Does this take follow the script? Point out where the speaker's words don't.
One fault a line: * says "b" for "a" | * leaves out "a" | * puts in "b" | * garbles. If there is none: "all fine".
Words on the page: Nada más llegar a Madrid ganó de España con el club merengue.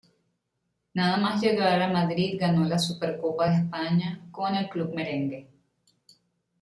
* puts in "la Supercopa"